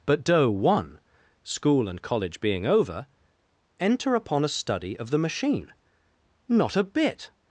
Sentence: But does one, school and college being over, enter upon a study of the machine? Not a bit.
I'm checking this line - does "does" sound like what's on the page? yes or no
no